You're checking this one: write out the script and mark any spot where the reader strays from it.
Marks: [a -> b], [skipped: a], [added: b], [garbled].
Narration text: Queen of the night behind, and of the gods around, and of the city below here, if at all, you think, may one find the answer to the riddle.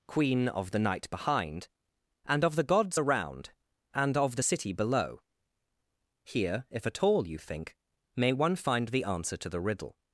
Queen of the night behind, and of the gods around, and of the city below here, if at all, you think, may one find the answer to the riddle.